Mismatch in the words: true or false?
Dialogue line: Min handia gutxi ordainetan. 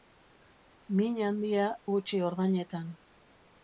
false